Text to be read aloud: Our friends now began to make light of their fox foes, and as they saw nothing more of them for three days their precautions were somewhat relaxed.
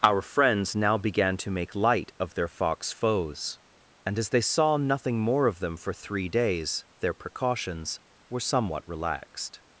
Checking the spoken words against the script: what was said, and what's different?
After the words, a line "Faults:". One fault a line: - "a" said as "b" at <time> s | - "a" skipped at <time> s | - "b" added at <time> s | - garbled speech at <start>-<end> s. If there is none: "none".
Our friends now began to make light of their fox foes, and as they saw nothing more of them for three days their precautions were somewhat relaxed.
Faults:
none